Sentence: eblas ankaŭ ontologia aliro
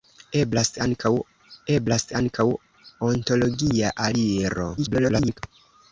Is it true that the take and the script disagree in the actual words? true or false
true